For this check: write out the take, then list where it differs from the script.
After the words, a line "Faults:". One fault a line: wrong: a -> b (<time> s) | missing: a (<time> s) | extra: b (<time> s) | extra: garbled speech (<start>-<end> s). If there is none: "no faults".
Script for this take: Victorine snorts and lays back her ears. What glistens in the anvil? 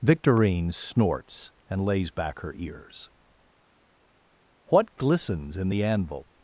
Victorine snorts and lays back her ears. What glistens in the anvil?
Faults:
no faults